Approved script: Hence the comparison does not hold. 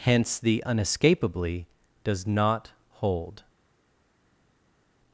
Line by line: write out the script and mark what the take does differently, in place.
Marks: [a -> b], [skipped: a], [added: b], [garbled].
Hence the [comparison -> unescapably] does not hold.